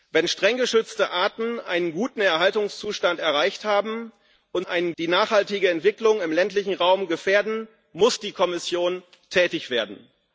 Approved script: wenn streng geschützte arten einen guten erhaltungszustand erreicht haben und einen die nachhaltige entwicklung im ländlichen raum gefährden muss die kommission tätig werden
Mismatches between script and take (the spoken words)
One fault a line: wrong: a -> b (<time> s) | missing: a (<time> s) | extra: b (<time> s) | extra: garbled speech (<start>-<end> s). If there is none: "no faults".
no faults